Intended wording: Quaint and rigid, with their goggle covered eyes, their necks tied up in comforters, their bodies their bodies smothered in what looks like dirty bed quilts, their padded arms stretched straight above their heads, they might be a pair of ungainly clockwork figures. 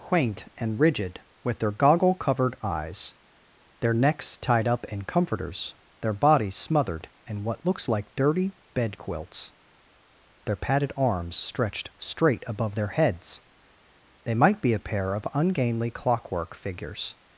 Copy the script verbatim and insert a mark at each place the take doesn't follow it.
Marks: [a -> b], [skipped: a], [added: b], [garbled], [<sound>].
Quaint and rigid, with their goggle covered eyes, their necks tied up in comforters, their bodies [skipped: their bodies] smothered in what looks like dirty bed quilts, their padded arms stretched straight above their heads, they might be a pair of ungainly clockwork figures.